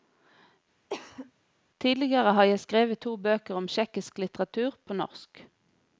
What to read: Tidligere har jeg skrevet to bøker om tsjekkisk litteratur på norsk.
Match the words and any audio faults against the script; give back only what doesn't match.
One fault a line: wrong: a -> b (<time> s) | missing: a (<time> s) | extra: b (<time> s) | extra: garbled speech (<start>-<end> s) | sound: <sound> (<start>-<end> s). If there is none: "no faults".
sound: cough (0.9-1.3 s)